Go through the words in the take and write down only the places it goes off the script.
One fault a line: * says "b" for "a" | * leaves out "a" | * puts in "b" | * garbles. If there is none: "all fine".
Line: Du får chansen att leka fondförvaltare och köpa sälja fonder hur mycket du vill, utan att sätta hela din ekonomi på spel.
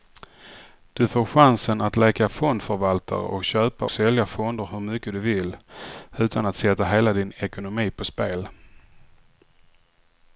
all fine